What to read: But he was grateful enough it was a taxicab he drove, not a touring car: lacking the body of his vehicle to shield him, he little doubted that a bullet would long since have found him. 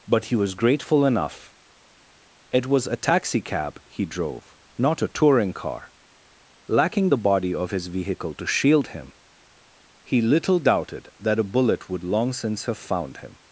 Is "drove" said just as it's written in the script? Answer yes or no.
yes